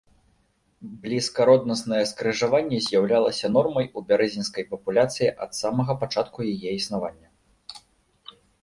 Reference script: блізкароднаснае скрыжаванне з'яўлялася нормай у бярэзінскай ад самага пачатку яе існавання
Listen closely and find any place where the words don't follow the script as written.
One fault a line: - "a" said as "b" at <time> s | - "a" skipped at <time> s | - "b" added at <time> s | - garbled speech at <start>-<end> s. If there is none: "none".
- "папуляцыі" added at 4.7 s